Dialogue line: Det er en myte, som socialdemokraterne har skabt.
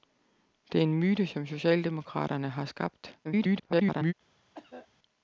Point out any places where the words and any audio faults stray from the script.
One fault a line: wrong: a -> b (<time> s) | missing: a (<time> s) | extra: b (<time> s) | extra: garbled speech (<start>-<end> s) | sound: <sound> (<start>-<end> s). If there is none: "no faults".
extra: garbled speech (3.2-4.1 s)
sound: cough (4.5-4.9 s)